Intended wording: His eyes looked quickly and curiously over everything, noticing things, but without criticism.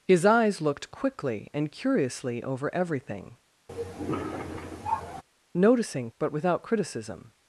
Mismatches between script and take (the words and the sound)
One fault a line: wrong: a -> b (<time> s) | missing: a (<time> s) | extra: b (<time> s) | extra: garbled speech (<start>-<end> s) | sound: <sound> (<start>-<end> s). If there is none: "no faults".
sound: cough (3.7-5.2 s)
missing: things (6.1 s)